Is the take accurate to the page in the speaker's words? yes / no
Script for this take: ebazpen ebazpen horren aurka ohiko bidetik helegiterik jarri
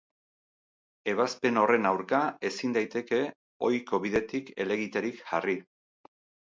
no